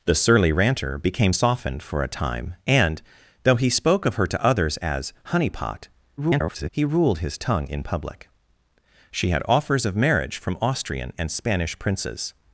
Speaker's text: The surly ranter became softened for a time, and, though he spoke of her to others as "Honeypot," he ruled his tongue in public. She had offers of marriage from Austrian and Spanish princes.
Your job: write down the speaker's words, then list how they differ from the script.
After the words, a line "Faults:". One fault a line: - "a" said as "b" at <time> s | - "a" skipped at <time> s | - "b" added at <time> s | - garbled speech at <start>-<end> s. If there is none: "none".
The surly ranter became softened for a time, and, though he spoke of her to others as "Honeypot," [garbled] he ruled his tongue in public. She had offers of marriage from Austrian and Spanish princes.
Faults:
- garbled speech at 6.2-6.7 s